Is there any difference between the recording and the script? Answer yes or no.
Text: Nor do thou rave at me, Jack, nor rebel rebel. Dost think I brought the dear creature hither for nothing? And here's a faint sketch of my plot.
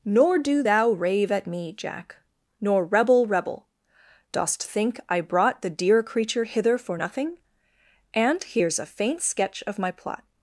no